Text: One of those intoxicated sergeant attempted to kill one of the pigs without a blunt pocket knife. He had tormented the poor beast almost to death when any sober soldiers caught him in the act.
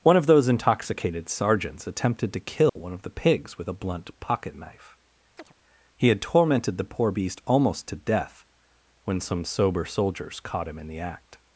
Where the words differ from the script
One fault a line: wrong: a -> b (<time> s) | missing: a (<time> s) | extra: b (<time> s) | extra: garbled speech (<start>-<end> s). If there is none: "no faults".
wrong: sergeant -> sergeants (1.3 s)
wrong: without -> with (3.6 s)
wrong: any -> some (9.2 s)